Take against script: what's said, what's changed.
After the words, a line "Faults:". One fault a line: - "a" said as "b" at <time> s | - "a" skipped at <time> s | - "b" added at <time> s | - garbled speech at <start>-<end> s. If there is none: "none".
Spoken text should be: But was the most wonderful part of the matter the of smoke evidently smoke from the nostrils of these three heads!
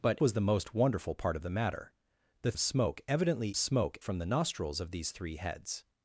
But was the most wonderful part of the matter the of smoke evidently smoke from the nostrils of these three heads!
Faults:
none